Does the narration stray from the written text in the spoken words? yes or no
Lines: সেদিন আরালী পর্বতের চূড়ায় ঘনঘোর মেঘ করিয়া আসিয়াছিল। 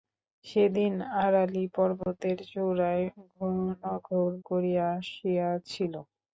yes